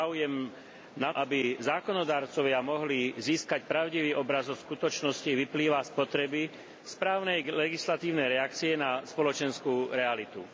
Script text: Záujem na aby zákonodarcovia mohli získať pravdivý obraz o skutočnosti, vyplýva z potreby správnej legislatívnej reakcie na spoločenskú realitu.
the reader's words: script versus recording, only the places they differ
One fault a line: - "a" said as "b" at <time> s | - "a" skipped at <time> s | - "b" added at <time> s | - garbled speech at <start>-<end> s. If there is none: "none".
none